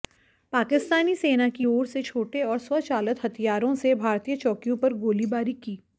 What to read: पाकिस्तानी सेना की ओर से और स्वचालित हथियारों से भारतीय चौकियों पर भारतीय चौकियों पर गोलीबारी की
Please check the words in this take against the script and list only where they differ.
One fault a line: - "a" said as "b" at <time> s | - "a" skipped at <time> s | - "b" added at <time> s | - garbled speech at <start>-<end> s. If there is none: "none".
- "छोटे" added at 2.0 s
- "भारतीय चौकियों पर" skipped at 4.9 s